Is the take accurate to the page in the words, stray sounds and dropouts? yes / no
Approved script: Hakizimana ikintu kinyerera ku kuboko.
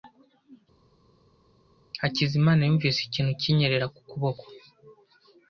no